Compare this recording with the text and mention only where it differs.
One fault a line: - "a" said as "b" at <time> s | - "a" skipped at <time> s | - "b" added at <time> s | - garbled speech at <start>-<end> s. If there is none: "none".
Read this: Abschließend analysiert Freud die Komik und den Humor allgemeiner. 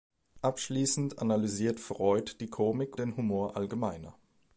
- "und" skipped at 3.0 s